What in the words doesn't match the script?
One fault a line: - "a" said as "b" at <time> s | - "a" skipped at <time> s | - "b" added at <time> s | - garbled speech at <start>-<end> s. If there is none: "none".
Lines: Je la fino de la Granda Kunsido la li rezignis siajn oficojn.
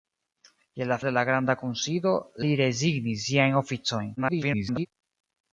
- "fino" skipped at 0.9 s
- "la" skipped at 2.1 s
- garbled speech at 4.2-4.9 s